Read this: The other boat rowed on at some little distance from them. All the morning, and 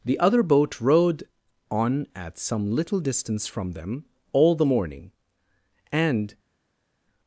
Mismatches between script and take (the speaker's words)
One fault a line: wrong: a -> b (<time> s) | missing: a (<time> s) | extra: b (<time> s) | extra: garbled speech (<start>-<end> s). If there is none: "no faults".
no faults